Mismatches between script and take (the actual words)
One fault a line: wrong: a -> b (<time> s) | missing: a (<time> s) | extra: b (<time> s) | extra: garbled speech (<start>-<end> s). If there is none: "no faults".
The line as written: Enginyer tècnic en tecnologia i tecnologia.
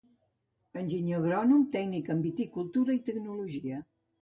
extra: agrònom (1.2 s)
wrong: tecnologia -> viticultura (2.3 s)